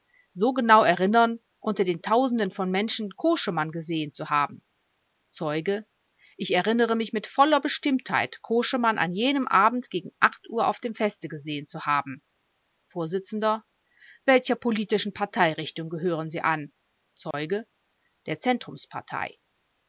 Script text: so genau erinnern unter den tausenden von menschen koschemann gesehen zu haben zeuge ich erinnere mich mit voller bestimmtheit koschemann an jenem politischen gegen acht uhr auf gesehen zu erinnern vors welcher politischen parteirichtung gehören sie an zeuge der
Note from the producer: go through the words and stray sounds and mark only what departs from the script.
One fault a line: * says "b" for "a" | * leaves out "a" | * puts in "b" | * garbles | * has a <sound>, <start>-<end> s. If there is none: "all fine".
* says "abend" for "politischen"
* puts in "dem feste"
* says "haben" for "erinnern"
* has a dropout, 17.3-17.3 s